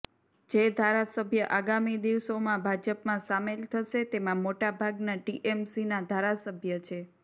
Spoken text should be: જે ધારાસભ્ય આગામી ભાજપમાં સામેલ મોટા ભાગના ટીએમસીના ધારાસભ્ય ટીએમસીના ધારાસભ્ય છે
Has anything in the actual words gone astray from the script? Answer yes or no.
yes